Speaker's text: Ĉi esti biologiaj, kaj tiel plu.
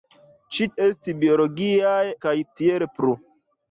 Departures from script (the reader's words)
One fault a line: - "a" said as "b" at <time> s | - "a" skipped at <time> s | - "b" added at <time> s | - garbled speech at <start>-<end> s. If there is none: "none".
none